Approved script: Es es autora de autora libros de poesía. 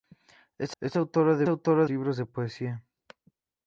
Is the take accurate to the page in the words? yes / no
yes